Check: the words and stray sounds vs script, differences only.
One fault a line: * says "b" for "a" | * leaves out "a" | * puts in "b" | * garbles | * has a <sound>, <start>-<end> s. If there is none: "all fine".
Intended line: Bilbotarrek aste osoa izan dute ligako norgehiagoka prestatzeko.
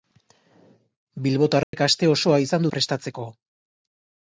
* has a dropout, 1.6-1.7 s
* leaves out "dute ligako norgehiagoka"